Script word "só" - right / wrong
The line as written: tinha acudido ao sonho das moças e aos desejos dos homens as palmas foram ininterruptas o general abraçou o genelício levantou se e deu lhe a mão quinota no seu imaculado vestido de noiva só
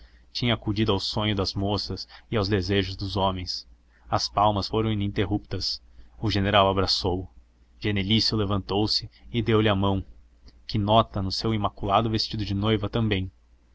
wrong